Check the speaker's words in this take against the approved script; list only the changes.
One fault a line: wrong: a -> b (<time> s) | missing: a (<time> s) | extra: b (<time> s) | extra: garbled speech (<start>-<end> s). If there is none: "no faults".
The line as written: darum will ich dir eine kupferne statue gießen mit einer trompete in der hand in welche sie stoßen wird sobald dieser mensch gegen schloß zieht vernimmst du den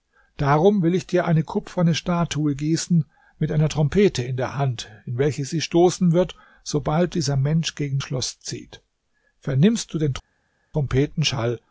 no faults